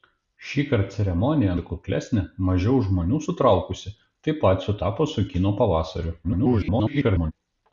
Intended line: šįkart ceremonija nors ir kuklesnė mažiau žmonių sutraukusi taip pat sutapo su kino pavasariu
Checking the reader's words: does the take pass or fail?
fail